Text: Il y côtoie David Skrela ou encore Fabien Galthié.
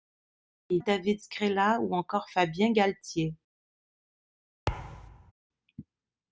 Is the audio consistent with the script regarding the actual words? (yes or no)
no